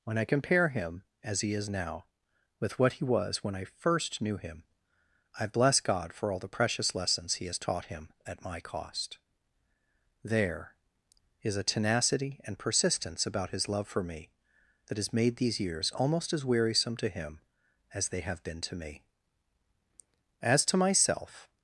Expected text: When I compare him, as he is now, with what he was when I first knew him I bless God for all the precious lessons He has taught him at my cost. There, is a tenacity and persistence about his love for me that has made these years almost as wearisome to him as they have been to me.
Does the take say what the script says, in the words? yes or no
no